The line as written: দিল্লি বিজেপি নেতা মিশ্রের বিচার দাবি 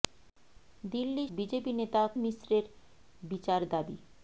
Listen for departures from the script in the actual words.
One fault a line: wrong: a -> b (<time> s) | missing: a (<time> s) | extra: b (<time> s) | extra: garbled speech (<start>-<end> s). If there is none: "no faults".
no faults